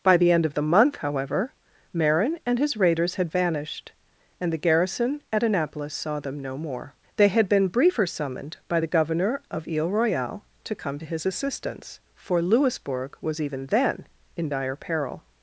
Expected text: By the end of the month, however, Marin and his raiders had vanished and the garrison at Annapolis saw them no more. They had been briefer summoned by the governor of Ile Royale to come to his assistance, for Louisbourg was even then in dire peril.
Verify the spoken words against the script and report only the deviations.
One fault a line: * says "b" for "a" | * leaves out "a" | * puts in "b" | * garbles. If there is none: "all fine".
all fine